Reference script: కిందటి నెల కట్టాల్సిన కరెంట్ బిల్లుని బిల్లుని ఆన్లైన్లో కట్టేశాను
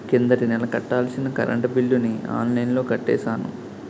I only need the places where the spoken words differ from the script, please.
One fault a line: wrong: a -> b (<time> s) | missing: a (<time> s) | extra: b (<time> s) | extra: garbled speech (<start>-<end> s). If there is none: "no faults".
missing: బిల్లుని (2.1 s)